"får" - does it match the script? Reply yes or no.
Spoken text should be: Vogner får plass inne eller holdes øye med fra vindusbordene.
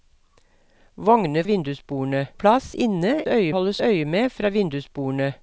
no